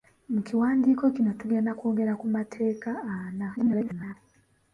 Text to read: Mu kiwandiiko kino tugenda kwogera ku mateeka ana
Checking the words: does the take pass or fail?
fail